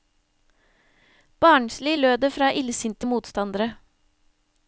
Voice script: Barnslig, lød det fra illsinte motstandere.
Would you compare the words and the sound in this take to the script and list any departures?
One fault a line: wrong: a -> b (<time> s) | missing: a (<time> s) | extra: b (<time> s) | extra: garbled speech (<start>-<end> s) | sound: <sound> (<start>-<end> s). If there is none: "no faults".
no faults